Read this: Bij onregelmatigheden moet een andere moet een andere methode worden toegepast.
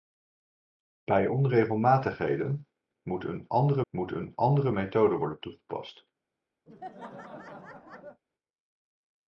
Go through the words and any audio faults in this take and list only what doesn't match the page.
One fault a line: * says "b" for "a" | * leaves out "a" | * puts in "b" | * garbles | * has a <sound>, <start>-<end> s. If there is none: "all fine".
* has a laugh, 6.7-8.2 s